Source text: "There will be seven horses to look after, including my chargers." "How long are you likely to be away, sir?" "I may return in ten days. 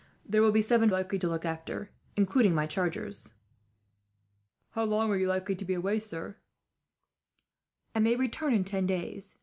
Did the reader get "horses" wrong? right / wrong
wrong